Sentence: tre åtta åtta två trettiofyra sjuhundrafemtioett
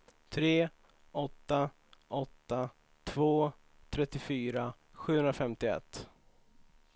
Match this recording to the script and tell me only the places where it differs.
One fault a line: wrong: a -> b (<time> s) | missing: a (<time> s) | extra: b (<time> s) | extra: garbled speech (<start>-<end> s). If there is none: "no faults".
no faults